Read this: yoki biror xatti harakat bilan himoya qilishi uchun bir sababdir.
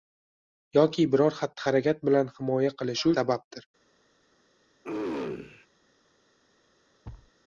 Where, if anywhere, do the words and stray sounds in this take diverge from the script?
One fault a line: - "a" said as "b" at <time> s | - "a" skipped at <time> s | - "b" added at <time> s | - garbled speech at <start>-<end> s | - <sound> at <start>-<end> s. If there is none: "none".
- "uchun bir" skipped at 3.1 s
- throat clearing at 4.8-5.7 s
- thud at 7.0-7.3 s